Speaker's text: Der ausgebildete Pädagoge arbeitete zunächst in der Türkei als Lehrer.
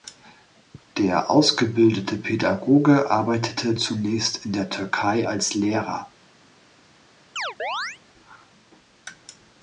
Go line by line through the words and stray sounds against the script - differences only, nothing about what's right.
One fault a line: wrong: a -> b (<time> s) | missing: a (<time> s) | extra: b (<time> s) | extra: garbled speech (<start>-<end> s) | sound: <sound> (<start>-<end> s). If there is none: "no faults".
sound: chirp (7.4-8.0 s)